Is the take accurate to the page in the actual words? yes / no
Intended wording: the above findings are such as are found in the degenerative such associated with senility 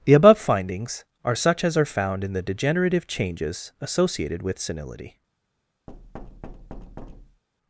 no